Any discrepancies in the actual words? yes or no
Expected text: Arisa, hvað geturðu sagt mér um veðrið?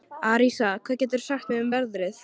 no